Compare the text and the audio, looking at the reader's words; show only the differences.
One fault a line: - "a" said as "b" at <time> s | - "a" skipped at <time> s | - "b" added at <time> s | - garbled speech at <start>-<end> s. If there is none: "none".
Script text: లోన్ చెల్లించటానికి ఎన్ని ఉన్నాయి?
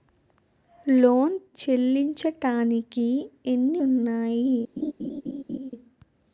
none